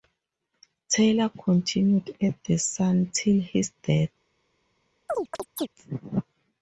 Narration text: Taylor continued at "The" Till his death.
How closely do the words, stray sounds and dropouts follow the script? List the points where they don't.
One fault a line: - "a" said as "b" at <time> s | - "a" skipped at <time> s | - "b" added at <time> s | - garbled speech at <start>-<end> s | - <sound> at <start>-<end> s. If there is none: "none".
- "Sun" added at 2.6 s
- chirp at 5.1-5.7 s